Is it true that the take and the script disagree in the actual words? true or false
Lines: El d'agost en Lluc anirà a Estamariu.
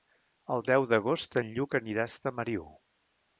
true